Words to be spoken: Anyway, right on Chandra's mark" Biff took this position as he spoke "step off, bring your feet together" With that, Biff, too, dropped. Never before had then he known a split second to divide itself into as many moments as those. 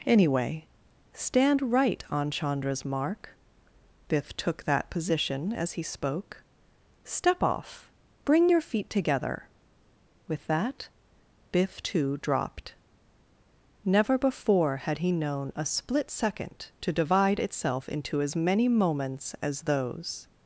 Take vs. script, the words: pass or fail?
fail